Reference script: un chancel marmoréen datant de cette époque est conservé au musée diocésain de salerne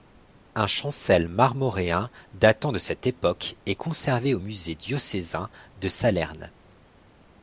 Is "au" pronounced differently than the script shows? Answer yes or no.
no